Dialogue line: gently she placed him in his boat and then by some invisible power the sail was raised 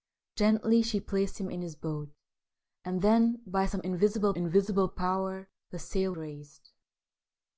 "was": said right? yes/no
no